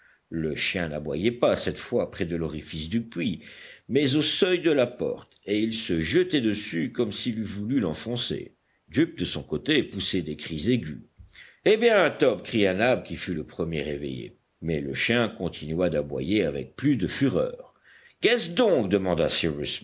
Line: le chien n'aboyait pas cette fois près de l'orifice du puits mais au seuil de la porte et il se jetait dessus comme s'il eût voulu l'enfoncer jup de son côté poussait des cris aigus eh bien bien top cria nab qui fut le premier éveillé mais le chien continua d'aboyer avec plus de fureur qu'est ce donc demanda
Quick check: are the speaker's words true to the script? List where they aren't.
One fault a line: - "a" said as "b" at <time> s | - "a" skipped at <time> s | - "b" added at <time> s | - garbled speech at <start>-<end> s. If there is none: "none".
- "bien" skipped at 12.1 s